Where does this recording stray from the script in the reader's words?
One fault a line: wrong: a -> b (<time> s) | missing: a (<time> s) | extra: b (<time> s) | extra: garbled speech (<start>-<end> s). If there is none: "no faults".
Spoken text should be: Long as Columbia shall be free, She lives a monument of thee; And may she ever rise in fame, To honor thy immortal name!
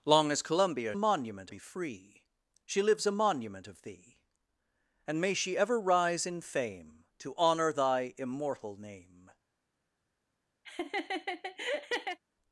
wrong: shall -> monument (1.0 s)